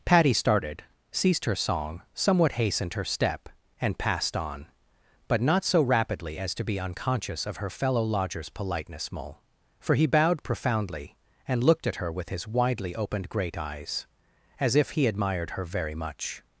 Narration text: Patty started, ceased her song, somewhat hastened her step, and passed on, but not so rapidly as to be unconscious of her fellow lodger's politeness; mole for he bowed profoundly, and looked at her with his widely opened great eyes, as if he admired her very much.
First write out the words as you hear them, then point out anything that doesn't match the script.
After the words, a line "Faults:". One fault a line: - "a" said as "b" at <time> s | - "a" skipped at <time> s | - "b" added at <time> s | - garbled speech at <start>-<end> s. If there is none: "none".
Patty started, ceased her song, somewhat hastened her step, and passed on, but not so rapidly as to be unconscious of her fellow lodger's politeness; mole for he bowed profoundly, and looked at her with his widely opened great eyes, as if he admired her very much.
Faults:
none